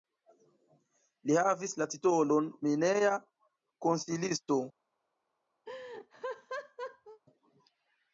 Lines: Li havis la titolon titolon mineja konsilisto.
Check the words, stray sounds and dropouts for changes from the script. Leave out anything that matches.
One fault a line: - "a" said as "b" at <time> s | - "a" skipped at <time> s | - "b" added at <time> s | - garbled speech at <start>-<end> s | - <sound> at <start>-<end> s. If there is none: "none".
- "titolon" skipped at 2.5 s
- laugh at 5.7-7.2 s